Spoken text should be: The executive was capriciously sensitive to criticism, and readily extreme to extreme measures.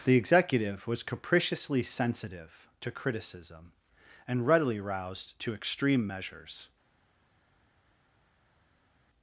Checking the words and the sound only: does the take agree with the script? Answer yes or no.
no